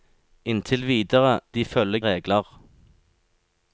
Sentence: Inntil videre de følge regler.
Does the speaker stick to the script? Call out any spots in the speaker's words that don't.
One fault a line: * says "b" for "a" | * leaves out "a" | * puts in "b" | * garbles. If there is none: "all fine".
all fine